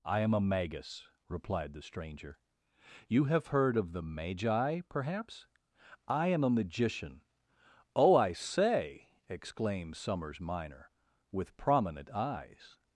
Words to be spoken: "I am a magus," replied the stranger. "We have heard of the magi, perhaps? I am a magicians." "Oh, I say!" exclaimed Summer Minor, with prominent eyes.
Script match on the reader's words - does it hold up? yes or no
no